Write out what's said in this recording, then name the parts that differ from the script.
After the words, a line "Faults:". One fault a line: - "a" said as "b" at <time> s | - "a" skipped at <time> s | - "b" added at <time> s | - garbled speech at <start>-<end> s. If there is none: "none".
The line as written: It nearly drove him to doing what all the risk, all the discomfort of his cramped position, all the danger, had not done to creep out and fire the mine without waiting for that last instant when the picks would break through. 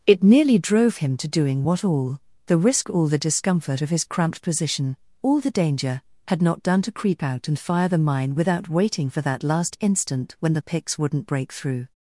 It nearly drove him to doing what all the risk, all the discomfort of his cramped position, all the danger, had not done to creep out and fire the mine without waiting for that last instant when the picks wouldn't break through.
Faults:
- "would" said as "wouldn't" at 11.0 s